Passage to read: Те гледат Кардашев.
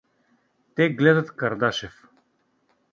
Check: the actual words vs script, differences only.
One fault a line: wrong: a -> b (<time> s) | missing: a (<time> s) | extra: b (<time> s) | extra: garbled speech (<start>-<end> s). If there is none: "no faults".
no faults